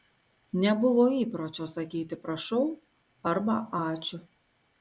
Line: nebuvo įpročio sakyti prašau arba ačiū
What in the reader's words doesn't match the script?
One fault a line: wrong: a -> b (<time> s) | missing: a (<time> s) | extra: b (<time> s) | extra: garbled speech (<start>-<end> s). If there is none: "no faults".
no faults